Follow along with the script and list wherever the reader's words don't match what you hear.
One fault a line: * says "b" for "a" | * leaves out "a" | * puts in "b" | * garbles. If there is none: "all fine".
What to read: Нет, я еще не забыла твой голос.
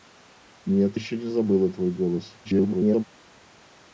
* leaves out "я"
* garbles